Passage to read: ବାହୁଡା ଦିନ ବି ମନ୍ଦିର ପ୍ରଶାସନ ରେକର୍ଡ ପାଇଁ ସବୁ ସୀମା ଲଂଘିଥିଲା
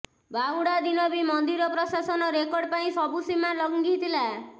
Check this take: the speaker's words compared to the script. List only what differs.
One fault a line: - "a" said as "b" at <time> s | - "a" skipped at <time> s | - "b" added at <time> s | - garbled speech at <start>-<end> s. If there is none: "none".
none